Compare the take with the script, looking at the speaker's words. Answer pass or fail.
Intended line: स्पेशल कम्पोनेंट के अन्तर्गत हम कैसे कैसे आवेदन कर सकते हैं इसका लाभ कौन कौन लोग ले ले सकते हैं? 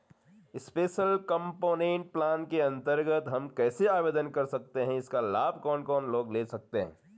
fail